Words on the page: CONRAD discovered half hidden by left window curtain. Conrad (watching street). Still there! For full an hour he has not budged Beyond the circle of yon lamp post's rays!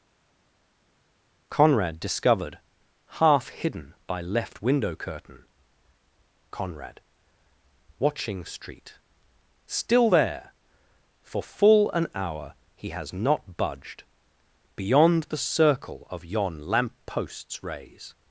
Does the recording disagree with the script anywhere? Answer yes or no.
no